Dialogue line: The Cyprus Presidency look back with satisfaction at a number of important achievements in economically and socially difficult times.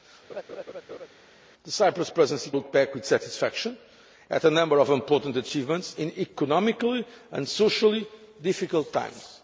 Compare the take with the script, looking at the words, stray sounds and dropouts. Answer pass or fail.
fail